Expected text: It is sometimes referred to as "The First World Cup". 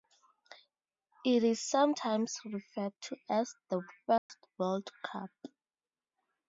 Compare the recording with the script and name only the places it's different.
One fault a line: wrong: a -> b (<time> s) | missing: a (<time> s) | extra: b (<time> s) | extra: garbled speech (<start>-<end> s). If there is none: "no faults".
no faults